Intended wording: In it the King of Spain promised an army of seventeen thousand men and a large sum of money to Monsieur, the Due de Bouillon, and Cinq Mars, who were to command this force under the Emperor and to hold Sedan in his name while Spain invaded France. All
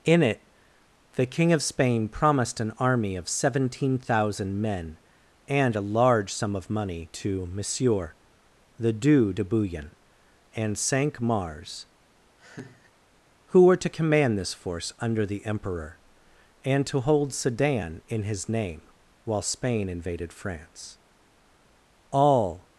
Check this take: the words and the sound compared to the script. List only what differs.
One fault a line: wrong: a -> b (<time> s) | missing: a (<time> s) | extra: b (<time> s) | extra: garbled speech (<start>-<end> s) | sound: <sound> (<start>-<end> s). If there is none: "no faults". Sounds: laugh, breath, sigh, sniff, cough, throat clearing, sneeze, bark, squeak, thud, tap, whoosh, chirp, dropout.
sound: laugh (12.4-12.9 s)